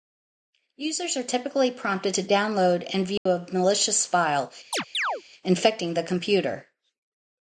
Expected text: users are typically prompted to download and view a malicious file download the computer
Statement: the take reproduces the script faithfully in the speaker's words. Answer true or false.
false